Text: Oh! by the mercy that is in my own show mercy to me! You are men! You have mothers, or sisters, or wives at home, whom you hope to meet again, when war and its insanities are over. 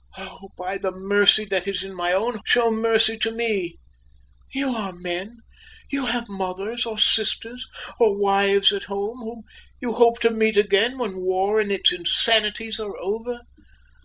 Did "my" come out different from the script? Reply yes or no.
no